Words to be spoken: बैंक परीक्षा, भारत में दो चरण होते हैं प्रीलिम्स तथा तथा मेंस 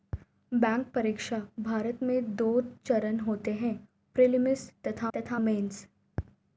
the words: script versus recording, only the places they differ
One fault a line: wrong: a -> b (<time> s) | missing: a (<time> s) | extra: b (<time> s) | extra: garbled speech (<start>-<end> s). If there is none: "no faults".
no faults